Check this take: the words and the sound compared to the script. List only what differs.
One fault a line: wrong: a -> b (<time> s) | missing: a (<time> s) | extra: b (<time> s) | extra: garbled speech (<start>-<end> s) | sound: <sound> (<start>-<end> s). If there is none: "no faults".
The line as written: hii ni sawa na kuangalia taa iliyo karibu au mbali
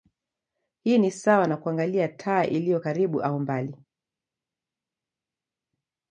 no faults